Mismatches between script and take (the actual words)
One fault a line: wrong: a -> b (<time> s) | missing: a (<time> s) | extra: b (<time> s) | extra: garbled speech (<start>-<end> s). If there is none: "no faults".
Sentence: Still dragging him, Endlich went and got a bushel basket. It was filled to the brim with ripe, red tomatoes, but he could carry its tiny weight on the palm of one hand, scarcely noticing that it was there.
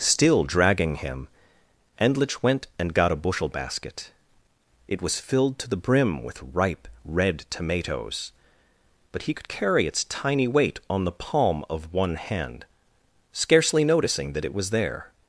no faults